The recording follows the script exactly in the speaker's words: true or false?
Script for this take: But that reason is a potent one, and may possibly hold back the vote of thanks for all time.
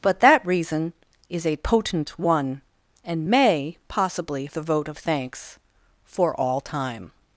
false